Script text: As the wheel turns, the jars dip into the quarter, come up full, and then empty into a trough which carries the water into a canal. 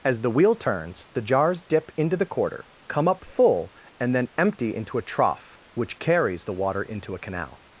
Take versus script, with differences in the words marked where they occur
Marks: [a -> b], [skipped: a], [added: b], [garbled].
As the wheel turns, the jars dip into the quarter, come up full, and then empty into a trough which carries the water into a canal.